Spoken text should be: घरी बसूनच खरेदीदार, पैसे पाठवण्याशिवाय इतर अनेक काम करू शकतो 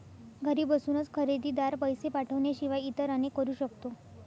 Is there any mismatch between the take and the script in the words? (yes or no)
yes